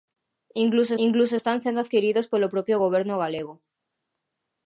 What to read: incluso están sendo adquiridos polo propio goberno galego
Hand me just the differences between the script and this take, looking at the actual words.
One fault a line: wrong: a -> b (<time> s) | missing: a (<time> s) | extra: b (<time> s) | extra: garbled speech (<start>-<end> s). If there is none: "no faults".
extra: incluso (1.0 s)